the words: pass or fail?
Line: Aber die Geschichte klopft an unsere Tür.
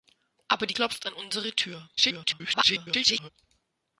fail